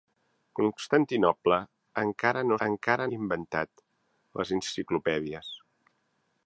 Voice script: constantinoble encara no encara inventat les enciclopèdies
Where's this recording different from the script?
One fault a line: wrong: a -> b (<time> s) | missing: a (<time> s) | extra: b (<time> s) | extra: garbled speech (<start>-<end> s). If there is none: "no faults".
no faults